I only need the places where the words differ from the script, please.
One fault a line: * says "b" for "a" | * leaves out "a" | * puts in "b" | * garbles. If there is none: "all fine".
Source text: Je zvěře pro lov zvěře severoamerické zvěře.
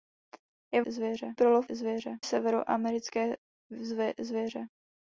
all fine